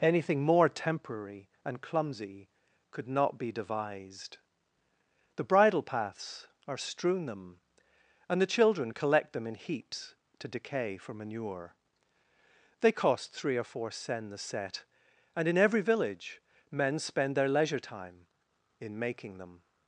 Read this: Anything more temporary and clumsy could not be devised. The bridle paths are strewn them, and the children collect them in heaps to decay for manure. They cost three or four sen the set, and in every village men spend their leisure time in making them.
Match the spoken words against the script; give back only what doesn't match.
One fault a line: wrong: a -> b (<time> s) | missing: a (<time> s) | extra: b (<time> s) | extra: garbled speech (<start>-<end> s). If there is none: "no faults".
no faults